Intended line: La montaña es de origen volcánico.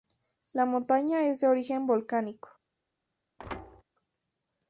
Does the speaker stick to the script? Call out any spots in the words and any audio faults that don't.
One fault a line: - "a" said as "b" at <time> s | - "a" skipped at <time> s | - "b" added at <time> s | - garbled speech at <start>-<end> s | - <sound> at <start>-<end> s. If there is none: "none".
- thud at 3.4-3.8 s